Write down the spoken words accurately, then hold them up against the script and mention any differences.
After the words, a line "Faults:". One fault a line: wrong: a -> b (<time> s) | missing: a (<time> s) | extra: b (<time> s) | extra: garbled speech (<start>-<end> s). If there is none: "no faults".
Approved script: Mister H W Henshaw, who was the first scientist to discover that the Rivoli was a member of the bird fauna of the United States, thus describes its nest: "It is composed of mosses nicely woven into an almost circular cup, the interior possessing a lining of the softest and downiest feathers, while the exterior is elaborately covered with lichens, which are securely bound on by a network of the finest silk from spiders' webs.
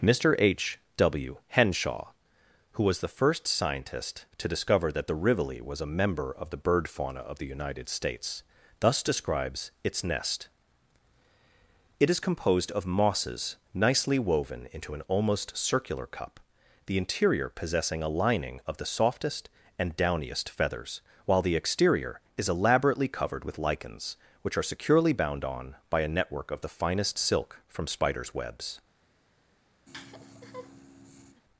Mister H W Henshaw, who was the first scientist to discover that the Rivoli was a member of the bird fauna of the United States, thus describes its nest: "It is composed of mosses nicely woven into an almost circular cup, the interior possessing a lining of the softest and downiest feathers, while the exterior is elaborately covered with lichens, which are securely bound on by a network of the finest silk from spiders' webs.
Faults:
no faults